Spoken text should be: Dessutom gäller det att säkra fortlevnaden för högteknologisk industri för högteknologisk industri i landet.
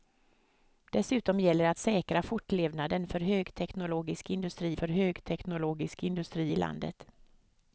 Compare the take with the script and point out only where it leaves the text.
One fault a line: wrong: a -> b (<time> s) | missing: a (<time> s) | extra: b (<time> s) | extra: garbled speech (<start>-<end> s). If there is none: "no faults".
no faults